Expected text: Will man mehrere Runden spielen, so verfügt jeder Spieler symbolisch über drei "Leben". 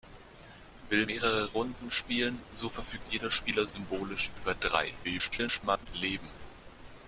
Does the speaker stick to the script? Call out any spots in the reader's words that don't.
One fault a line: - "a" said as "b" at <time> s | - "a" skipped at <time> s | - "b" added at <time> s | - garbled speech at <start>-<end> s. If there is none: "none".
- "man" skipped at 1.1 s
- garbled speech at 5.0-5.9 s